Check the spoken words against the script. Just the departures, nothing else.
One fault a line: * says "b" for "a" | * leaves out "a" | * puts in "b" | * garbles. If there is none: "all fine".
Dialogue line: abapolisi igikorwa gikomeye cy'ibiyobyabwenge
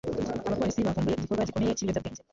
* puts in "bavumbuye"